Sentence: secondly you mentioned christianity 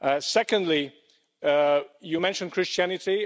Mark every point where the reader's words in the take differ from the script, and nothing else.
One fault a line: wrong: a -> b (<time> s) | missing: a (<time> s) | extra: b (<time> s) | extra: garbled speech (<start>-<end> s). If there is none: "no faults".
no faults